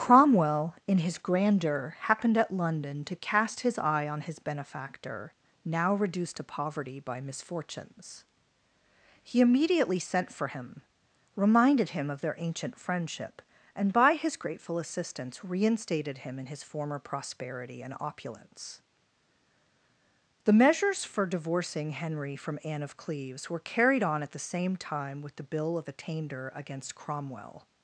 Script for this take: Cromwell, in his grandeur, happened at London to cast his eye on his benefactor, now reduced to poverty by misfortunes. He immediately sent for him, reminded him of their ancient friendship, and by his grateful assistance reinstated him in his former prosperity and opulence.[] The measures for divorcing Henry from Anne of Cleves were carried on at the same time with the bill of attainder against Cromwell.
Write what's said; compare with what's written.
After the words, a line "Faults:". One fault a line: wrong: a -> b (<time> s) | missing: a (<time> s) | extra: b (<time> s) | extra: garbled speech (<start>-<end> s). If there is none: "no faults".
Cromwell, in his grandeur, happened at London to cast his eye on his benefactor, now reduced to poverty by misfortunes. He immediately sent for him, reminded him of their ancient friendship, and by his grateful assistance reinstated him in his former prosperity and opulence.[] The measures for divorcing Henry from Anne of Cleves were carried on at the same time with the bill of attainder against Cromwell.
Faults:
no faults